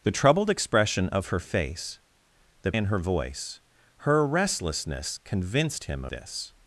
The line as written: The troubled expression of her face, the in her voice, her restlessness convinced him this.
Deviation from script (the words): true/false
false